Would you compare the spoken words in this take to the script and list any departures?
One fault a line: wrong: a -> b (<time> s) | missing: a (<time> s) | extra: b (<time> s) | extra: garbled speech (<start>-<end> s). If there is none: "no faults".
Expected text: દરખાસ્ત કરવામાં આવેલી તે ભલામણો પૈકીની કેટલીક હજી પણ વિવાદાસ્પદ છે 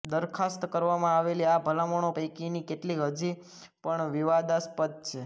wrong: તે -> આ (1.4 s)